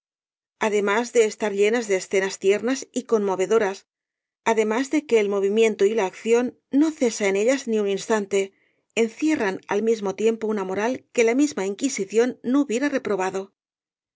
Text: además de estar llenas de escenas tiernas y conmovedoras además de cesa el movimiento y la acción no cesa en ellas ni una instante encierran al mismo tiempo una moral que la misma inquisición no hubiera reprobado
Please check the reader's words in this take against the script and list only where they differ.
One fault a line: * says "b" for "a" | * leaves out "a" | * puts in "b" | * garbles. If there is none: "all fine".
* says "que" for "cesa"
* says "un" for "una"